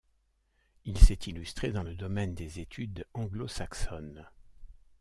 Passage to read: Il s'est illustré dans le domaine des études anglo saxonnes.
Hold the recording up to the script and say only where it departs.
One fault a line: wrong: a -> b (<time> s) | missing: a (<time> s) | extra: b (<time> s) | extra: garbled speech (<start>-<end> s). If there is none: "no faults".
no faults